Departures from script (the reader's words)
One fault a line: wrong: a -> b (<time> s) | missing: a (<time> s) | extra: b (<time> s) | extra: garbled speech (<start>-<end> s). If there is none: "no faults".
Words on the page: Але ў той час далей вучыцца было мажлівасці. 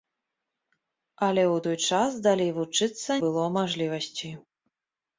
no faults